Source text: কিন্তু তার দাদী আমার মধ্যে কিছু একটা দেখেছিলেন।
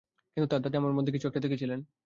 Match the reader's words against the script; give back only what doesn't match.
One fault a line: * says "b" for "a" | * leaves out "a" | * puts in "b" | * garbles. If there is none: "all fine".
all fine